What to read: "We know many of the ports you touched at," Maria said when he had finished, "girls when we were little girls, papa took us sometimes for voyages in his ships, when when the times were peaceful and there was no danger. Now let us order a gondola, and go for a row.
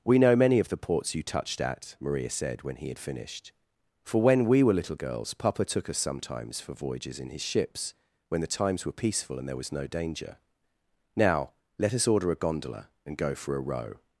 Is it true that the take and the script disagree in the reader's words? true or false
true